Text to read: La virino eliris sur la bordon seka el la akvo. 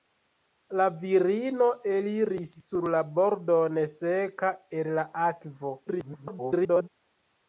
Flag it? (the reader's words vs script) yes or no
yes